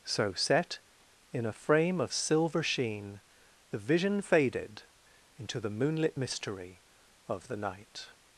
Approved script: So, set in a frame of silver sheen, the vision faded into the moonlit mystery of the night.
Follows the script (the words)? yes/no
yes